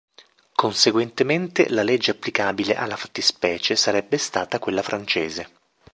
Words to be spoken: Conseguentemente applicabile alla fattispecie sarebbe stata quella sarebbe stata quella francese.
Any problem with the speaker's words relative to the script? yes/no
yes